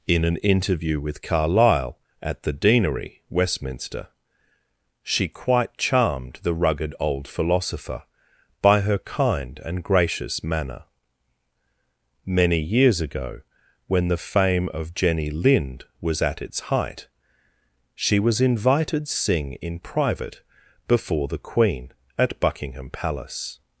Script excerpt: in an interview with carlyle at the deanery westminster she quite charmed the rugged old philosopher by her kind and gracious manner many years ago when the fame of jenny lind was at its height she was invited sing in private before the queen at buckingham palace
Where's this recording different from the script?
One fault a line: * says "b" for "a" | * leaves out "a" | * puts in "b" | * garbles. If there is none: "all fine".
all fine